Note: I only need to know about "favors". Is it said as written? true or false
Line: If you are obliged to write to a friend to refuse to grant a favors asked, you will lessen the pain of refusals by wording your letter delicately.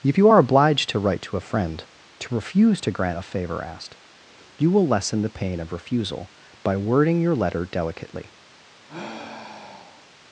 false